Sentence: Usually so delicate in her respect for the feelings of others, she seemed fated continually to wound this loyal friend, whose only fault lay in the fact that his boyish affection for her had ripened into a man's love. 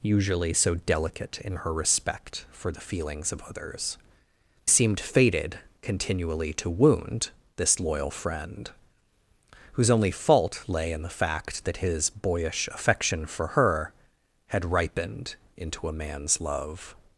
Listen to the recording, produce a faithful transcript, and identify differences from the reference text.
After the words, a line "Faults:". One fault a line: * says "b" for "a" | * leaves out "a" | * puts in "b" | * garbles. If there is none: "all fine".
Usually so delicate in her respect for the feelings of others, seemed fated continually to wound this loyal friend, whose only fault lay in the fact that his boyish affection for her had ripened into a man's love.
Faults:
* leaves out "she"